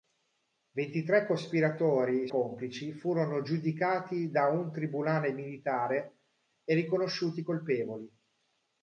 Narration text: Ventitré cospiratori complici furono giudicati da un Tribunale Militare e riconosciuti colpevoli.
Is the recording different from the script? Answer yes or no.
no